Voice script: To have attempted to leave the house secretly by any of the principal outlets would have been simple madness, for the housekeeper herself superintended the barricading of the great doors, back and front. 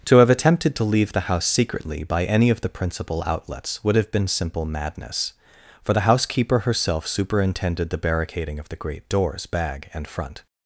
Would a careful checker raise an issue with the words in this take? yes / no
yes